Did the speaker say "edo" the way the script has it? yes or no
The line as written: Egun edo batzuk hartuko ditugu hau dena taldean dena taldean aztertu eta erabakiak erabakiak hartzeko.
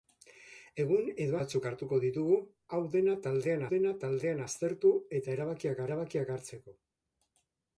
yes